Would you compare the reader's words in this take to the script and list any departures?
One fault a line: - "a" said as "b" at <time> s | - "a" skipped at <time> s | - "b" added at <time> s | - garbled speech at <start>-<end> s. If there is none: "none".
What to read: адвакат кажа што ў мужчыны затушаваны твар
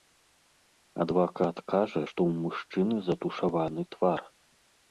none